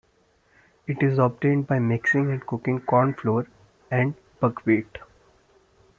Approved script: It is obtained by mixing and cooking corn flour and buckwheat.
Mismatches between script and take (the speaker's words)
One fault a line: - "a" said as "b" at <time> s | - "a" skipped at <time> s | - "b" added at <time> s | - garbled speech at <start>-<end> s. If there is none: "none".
none